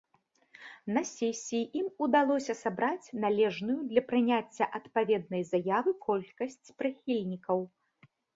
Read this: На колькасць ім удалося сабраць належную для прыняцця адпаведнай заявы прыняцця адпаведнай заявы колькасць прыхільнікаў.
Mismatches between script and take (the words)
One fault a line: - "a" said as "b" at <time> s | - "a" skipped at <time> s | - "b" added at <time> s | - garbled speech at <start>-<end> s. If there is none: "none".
- "колькасць" said as "сесіі" at 1.1 s
- "прыняцця адпаведнай заявы" skipped at 5.9 s